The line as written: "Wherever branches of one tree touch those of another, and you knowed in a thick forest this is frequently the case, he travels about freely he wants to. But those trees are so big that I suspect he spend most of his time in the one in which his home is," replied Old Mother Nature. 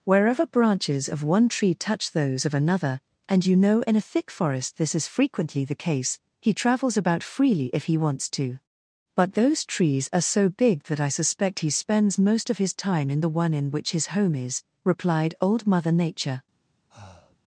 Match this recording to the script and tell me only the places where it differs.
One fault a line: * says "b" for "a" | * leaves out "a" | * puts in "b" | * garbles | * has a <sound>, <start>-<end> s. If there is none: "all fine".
* says "know" for "knowed"
* puts in "if"
* says "spends" for "spend"
* has a breath, 16.9-17.4 s